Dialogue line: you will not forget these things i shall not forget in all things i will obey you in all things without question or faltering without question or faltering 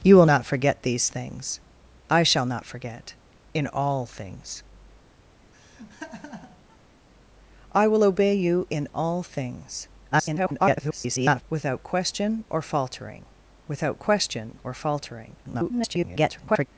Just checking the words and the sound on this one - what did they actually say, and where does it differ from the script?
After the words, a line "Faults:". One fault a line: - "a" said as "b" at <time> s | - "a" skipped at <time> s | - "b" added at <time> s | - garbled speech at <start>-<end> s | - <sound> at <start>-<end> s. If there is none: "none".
you will not forget these things i shall not forget in all things i will obey you in all things [garbled] without question or faltering without question or faltering [garbled]
Faults:
- laugh at 5.5-6.8 s
- garbled speech at 10.1-11.4 s
- garbled speech at 15.4-16.7 s